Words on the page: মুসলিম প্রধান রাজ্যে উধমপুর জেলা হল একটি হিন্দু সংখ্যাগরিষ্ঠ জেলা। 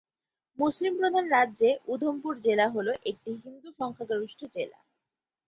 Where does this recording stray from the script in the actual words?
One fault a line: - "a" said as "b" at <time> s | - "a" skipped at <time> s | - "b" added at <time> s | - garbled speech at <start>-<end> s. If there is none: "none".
none